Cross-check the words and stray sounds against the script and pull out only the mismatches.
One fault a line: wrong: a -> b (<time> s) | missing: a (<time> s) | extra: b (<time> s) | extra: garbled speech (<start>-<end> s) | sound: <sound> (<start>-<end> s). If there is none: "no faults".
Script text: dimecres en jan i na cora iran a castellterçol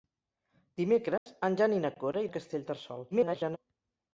sound: dropout (1.2-1.3 s)
missing: iran (2.2 s)
extra: garbled speech (3.1-3.6 s)